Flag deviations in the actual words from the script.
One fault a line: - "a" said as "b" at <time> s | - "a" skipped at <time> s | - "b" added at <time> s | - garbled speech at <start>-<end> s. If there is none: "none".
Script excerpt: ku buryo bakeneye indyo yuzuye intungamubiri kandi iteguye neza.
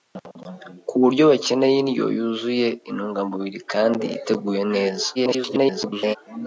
- garbled speech at 5.1-6.2 s